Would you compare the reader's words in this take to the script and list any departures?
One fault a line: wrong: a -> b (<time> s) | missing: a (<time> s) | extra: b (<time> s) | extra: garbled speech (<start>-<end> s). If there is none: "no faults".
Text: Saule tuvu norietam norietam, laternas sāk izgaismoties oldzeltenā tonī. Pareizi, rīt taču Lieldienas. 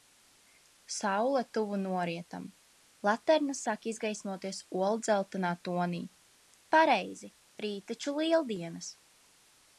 missing: norietam (2.5 s)